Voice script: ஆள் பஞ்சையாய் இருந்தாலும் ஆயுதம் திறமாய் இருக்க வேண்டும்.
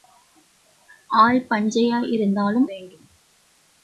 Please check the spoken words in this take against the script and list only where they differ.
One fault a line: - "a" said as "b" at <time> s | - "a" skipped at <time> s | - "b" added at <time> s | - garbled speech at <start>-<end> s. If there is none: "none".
- "ஆயுதம் திறமாய் இருக்க" skipped at 2.7 s